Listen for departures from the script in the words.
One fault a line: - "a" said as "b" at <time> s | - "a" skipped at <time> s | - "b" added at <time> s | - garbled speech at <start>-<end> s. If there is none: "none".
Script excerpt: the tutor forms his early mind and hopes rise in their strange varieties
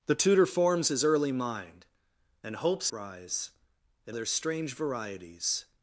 none